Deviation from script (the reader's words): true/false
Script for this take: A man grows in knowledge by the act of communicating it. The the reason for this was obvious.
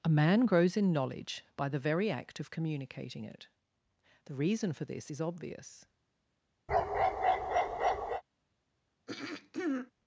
true